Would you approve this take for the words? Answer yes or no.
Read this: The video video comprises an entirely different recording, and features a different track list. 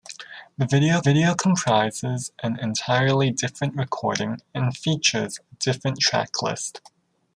yes